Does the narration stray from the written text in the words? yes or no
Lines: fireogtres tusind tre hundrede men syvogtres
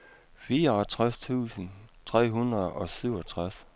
yes